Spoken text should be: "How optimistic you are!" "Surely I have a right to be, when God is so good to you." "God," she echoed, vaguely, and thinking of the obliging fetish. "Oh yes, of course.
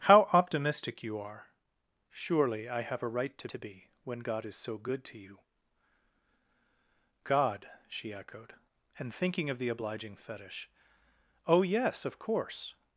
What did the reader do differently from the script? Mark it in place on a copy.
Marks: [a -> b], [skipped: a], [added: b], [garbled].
"How optimistic you are!" "Surely I have a right to [added: to] be, when God is so good to you." "God," she echoed, [skipped: vaguely,] and thinking of the obliging fetish. "Oh yes, of course.